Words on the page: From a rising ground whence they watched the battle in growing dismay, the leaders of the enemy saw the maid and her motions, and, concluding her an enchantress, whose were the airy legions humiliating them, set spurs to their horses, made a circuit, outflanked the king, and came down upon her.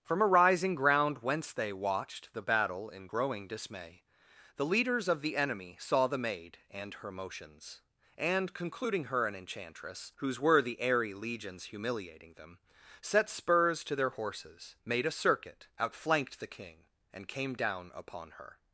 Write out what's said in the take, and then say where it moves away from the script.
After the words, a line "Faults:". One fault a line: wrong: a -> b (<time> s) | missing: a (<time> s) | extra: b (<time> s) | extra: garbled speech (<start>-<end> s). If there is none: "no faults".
From a rising ground whence they watched the battle in growing dismay, the leaders of the enemy saw the maid and her motions, and, concluding her an enchantress, whose were the airy legions humiliating them, set spurs to their horses, made a circuit, outflanked the king, and came down upon her.
Faults:
no faults